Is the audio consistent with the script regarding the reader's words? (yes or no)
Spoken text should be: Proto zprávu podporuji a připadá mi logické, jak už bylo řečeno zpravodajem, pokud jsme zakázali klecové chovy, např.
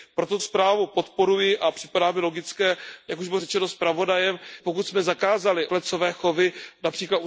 yes